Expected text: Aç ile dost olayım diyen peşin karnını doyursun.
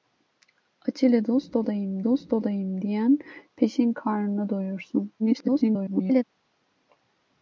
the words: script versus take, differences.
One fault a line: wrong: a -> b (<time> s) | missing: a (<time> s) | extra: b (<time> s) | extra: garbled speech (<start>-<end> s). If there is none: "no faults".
extra: dost olayım (2.0 s)
extra: garbled speech (5.2-6.2 s)